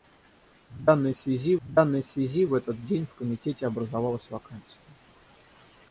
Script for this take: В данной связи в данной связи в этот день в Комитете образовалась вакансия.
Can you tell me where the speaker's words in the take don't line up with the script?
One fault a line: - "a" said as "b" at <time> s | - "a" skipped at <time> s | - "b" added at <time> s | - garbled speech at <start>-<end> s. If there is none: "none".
none